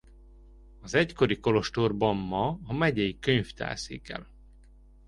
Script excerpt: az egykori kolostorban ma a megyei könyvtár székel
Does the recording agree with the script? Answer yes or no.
yes